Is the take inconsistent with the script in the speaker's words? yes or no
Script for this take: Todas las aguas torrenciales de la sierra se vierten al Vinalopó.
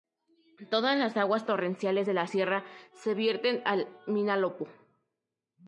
no